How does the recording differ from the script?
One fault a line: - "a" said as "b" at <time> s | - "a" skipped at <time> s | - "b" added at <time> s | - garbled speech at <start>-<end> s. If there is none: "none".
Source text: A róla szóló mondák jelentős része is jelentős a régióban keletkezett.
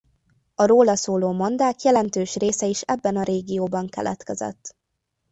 - "jelentős" said as "ebben" at 2.8 s